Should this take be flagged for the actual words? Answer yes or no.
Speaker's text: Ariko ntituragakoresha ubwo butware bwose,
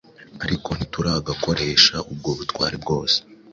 no